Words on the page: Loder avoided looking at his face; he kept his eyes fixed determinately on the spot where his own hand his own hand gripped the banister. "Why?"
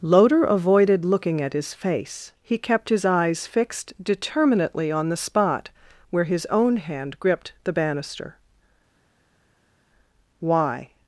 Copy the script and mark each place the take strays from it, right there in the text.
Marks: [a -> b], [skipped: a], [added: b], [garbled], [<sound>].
Loder avoided looking at his face; he kept his eyes fixed determinately on the spot where his own hand [skipped: his own hand] gripped the banister. "Why?"